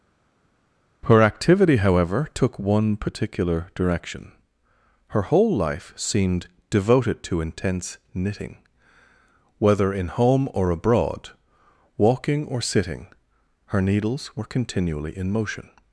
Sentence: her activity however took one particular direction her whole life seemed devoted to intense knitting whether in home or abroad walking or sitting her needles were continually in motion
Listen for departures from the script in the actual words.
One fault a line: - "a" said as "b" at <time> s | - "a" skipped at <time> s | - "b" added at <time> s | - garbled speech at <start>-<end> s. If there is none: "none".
none